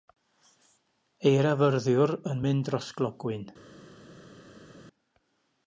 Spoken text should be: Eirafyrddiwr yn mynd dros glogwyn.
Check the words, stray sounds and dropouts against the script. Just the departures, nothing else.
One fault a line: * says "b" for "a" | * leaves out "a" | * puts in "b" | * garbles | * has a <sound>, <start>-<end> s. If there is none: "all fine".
all fine